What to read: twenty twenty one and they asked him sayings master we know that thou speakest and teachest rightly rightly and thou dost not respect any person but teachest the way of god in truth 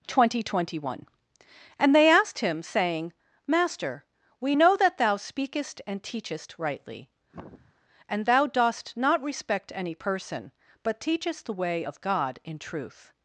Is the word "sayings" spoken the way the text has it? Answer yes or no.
no